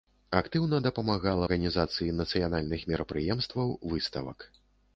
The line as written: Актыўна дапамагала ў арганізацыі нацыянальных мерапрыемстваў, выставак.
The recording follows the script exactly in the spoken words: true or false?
false